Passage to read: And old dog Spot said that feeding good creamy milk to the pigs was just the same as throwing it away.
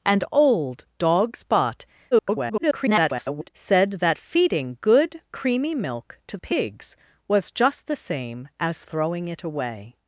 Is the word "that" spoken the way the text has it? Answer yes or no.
yes